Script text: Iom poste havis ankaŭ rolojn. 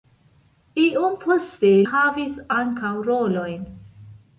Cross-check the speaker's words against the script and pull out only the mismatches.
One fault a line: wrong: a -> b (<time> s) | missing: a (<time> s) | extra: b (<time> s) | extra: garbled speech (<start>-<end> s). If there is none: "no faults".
no faults